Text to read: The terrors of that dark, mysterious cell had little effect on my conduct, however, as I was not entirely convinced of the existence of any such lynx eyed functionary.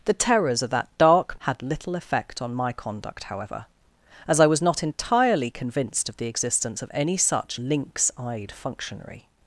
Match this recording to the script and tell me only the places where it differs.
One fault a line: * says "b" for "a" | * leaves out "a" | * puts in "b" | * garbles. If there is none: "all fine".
* leaves out "mysterious cell"